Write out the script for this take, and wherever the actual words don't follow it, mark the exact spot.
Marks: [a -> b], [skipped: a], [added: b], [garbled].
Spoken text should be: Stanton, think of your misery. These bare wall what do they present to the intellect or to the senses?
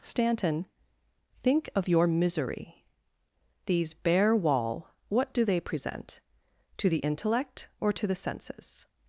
Stanton, think of your misery. These bare wall what do they present to the intellect or to the senses?